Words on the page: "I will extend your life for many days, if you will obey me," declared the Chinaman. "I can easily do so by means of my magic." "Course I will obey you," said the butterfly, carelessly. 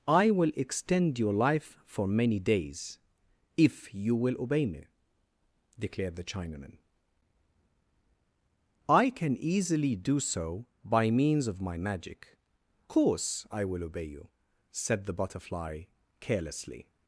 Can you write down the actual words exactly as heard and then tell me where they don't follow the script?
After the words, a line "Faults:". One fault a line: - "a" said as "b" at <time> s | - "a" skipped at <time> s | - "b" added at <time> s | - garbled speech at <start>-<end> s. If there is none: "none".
"I will extend your life for many days, if you will obey me," declared the Chinaman. "I can easily do so by means of my magic." "Course I will obey you," said the butterfly, carelessly.
Faults:
none